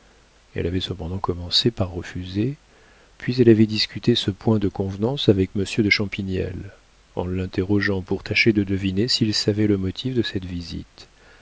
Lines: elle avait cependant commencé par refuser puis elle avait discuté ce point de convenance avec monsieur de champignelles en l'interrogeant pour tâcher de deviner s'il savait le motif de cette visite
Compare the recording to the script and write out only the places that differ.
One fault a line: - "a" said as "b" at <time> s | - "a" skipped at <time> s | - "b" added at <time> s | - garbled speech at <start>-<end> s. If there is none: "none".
none